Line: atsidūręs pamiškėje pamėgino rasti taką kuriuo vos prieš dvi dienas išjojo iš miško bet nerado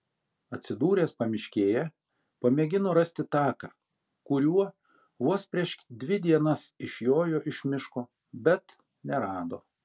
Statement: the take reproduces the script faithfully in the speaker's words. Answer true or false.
true